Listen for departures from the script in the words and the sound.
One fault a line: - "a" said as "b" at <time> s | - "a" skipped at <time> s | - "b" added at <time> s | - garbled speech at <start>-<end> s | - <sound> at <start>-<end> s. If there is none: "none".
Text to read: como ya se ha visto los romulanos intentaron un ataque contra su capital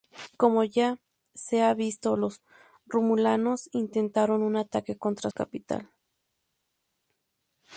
- "su" skipped at 5.3 s